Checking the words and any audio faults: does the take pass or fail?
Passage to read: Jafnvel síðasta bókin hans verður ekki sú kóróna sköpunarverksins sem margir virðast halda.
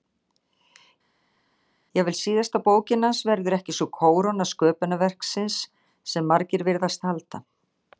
pass